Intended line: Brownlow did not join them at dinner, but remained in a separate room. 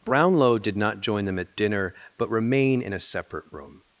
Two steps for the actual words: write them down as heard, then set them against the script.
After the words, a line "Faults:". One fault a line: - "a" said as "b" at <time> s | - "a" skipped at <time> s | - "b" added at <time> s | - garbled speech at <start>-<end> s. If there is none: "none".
Brownlow did not join them at dinner, but remain in a separate room.
Faults:
- "remained" said as "remain" at 2.3 s